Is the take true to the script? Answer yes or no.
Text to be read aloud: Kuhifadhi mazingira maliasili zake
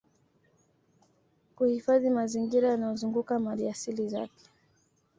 no